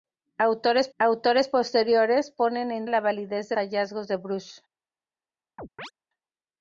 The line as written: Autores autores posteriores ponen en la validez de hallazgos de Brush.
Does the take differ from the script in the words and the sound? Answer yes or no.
yes